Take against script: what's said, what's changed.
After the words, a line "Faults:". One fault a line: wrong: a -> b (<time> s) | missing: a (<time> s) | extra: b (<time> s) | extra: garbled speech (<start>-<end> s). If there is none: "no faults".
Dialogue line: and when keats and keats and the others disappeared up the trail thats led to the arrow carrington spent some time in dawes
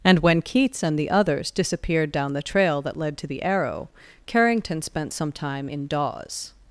and when keats and the others disappeared down the trail that led to the arrow carrington spent some time in dawes
Faults:
missing: keats and (1.0 s)
wrong: up -> down (2.1 s)
wrong: thats -> that (2.8 s)